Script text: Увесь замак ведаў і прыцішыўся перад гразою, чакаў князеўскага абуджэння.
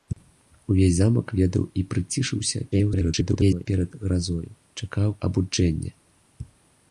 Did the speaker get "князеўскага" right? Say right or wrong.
wrong